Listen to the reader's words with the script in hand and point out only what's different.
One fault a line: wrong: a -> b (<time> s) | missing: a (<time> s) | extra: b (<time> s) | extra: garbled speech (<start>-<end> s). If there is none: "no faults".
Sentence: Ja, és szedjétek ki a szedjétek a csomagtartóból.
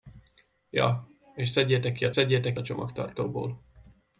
no faults